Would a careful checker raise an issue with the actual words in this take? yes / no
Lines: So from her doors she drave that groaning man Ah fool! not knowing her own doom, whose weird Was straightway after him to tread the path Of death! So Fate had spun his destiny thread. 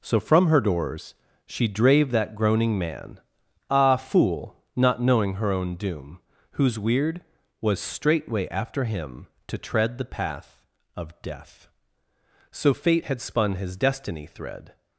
no